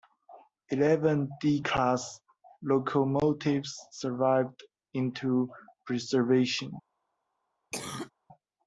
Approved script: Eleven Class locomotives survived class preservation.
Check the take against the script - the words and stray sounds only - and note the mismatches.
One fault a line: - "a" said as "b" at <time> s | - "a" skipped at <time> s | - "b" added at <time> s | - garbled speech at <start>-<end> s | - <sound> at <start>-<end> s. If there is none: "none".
- "D" added at 1.4 s
- "class" said as "into" at 4.9 s
- cough at 7.7-8.1 s